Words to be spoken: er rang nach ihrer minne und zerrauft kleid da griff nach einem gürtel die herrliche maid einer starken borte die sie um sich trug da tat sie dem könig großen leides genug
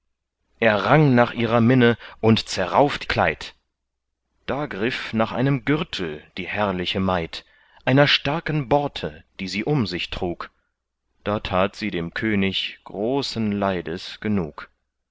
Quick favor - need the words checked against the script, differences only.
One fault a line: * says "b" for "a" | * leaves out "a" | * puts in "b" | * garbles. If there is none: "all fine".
all fine